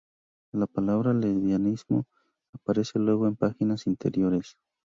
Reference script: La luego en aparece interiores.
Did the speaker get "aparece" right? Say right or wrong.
wrong